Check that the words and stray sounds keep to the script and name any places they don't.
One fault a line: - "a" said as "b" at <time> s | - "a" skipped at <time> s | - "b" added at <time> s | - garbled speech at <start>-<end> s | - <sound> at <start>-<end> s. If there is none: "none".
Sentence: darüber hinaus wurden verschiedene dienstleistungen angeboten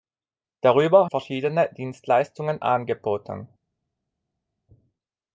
- "hinaus wurden" skipped at 1.1 s